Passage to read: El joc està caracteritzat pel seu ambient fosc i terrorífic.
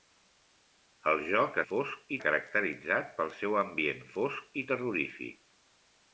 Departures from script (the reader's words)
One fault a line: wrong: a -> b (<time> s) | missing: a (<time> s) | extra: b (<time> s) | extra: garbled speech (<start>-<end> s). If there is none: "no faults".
wrong: està -> fosc (1.7 s)